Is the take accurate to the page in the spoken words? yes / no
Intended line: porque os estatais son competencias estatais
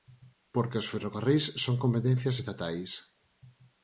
no